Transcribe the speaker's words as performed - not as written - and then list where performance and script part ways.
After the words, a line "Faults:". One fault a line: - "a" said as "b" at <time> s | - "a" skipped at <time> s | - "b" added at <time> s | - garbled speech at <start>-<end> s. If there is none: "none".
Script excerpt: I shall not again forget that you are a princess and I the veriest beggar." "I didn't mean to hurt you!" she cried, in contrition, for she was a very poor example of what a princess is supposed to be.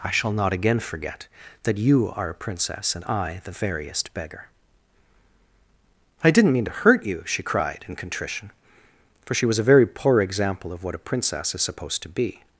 I shall not again forget that you are a princess and I the veriest beggar." "I didn't mean to hurt you!" she cried, in contrition, for she was a very poor example of what a princess is supposed to be.
Faults:
none